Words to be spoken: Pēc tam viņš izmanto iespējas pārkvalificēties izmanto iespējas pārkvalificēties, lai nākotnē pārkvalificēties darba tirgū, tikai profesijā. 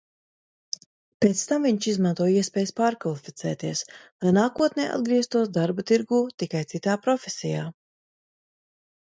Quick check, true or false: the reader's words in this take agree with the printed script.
false